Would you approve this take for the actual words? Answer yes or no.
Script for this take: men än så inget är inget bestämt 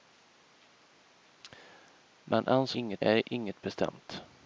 yes